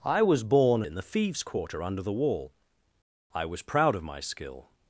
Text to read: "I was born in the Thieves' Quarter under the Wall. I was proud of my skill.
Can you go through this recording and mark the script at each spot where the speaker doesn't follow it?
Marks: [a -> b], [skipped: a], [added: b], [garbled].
"I was born in the Thieves' Quarter under the Wall. I was proud of my skill.